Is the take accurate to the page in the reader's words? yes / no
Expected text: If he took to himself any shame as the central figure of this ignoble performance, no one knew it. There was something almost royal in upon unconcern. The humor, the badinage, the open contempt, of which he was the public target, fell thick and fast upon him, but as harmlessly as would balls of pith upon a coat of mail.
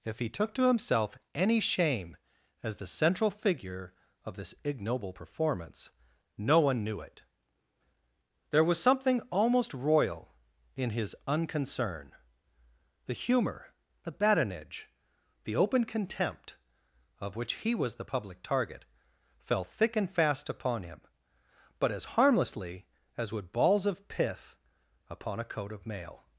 no